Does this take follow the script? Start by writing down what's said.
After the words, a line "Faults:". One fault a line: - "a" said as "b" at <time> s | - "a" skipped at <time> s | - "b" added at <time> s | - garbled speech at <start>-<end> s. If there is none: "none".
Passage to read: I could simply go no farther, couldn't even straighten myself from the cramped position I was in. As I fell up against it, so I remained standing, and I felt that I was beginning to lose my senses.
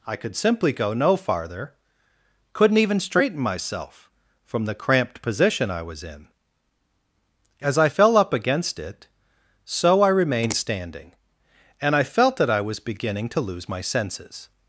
I could simply go no farther, couldn't even straighten myself from the cramped position I was in. As I fell up against it, so I remained standing, and I felt that I was beginning to lose my senses.
Faults:
none